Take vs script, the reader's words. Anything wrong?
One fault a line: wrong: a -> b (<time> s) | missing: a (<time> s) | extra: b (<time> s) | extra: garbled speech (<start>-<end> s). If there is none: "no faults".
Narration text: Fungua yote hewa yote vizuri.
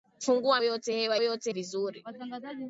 no faults